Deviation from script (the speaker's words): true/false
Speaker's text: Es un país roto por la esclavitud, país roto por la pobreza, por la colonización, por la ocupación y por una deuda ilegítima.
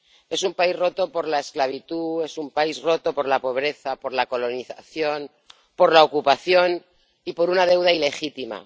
true